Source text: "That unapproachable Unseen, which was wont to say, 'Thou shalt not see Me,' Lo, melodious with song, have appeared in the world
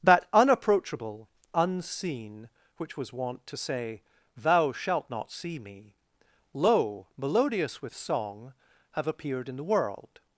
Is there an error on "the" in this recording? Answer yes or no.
no